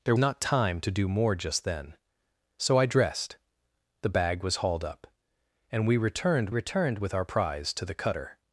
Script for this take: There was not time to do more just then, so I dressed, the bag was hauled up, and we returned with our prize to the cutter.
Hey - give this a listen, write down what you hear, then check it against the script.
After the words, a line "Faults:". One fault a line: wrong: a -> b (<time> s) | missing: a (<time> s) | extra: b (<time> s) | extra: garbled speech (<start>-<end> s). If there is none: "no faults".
There not time to do more just then, so I dressed, the bag was hauled up, and we returned returned with our prize to the cutter.
Faults:
missing: was (0.1 s)
extra: returned (6.5 s)